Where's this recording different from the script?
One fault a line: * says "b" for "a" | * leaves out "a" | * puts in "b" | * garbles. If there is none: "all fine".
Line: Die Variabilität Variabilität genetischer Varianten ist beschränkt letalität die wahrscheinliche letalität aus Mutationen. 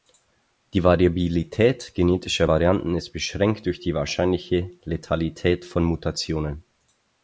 * leaves out "Variabilität"
* says "durch" for "letalität"
* says "von" for "aus"